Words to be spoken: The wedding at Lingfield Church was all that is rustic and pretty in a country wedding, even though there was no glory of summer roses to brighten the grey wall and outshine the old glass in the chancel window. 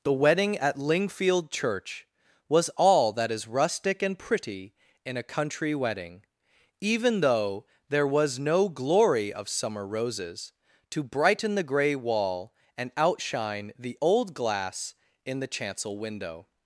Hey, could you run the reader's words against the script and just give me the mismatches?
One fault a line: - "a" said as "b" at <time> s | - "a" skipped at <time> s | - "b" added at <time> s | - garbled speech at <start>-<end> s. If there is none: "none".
none